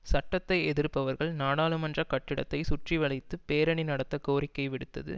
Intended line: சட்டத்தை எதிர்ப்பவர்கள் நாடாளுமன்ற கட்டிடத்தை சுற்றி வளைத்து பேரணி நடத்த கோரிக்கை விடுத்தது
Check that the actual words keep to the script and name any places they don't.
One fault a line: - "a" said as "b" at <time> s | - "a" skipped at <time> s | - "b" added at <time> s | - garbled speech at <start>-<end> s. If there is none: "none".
none